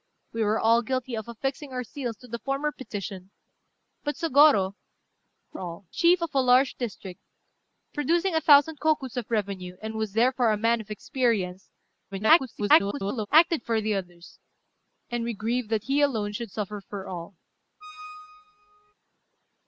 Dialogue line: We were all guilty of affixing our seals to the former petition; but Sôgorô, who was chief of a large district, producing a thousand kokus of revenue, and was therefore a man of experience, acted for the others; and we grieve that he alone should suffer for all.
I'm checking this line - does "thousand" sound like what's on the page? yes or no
yes